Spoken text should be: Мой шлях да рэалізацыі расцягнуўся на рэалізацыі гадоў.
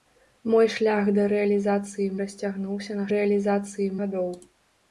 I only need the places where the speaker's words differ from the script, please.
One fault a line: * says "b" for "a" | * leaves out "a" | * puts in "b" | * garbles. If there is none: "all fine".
all fine